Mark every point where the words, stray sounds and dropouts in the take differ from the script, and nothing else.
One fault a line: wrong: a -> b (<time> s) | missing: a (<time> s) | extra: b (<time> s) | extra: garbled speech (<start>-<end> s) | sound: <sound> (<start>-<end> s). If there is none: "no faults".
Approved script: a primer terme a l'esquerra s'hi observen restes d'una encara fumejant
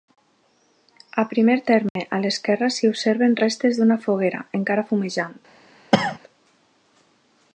sound: dropout (1.9-2.0 s)
extra: foguera (4.1 s)
sound: cough (5.9-6.2 s)